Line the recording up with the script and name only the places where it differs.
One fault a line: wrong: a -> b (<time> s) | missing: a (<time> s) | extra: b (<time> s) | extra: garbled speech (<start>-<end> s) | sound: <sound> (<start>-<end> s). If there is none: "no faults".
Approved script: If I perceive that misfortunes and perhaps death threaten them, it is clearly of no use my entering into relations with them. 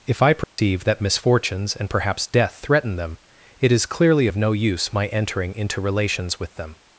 sound: dropout (0.4-0.6 s)